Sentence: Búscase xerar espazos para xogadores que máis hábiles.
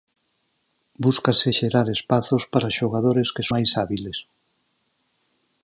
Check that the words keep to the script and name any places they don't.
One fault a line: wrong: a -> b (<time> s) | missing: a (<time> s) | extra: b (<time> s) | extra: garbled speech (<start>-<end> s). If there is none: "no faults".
no faults